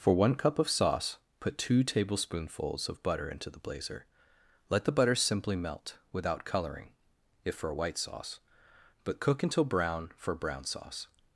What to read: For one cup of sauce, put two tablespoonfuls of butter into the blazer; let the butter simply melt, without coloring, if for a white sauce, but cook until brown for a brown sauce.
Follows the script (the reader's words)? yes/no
no